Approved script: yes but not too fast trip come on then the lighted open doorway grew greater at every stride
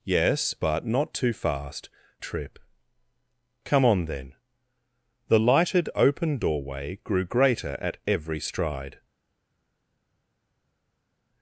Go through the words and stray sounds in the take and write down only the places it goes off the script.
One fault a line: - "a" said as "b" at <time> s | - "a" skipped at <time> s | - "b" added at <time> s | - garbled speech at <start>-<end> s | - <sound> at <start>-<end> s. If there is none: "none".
none